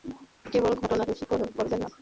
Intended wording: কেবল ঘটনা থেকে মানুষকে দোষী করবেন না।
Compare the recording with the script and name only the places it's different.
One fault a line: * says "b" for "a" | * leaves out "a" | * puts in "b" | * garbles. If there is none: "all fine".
* leaves out "থেকে মানুষকে"